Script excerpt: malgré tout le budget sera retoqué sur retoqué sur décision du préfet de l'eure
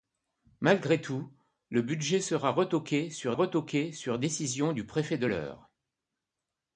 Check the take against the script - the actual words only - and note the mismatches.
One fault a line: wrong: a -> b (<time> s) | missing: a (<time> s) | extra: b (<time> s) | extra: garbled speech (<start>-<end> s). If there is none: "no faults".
no faults